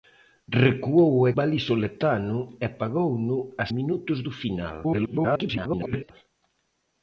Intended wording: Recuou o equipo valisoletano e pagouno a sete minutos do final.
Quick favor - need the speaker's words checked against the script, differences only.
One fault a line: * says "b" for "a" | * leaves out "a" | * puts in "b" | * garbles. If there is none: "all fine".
* leaves out "equipo"
* leaves out "sete"
* garbles